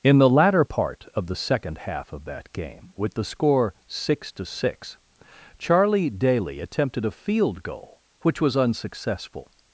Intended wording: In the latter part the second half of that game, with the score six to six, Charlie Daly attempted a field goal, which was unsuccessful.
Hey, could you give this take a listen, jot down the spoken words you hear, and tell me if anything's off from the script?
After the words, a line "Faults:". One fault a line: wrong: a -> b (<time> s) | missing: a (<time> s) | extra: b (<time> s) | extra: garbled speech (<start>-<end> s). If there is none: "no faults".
In the latter part of the second half of that game, with the score six to six, Charlie Daly attempted a field goal, which was unsuccessful.
Faults:
extra: of (1.1 s)